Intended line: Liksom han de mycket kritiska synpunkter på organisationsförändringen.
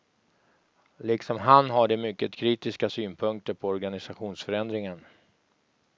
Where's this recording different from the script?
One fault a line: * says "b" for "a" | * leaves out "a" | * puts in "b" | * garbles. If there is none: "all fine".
* puts in "har"